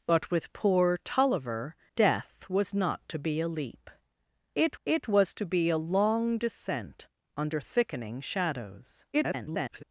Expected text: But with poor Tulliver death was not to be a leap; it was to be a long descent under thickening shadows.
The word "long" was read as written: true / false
true